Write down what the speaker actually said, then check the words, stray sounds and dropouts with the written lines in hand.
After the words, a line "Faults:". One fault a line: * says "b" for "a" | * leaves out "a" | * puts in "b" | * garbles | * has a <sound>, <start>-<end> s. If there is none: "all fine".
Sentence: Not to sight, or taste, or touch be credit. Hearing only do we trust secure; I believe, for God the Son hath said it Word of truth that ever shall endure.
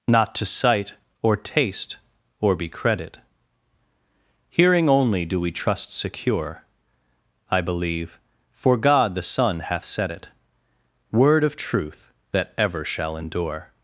Not to sight, or taste, or be credit. Hearing only do we trust secure; I believe, for God the Son hath said it Word of truth that ever shall endure.
Faults:
* leaves out "touch"